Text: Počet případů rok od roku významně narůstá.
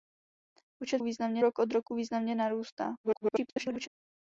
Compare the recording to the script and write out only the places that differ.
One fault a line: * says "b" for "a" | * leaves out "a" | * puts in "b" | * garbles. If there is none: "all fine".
* says "významně" for "případů"
* garbles